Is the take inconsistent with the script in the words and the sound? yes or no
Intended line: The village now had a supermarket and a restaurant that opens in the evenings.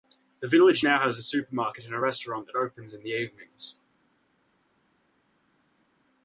yes